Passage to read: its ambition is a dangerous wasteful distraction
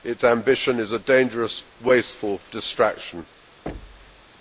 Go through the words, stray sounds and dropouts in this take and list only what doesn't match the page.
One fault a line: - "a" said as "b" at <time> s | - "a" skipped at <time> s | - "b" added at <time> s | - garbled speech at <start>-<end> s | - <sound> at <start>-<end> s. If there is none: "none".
- thud at 3.7-4.3 s